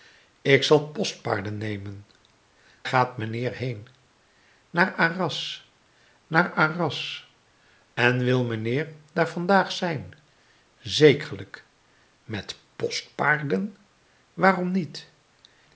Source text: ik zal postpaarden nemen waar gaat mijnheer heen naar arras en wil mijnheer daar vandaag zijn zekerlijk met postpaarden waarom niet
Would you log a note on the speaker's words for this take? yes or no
yes